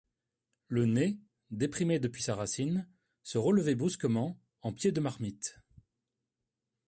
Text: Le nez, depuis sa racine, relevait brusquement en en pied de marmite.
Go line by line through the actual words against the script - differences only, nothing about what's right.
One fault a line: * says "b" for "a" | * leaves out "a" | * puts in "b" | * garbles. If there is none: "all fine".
* puts in "déprimé"
* puts in "se"
* leaves out "en"